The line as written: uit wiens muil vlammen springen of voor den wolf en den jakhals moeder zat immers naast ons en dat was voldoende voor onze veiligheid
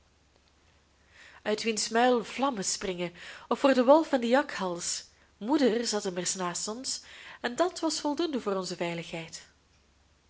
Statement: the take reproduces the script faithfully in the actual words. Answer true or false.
true